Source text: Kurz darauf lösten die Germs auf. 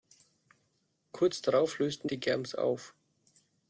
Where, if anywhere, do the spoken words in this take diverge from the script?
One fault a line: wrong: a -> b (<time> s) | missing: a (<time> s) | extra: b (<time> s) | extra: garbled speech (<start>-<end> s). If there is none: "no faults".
no faults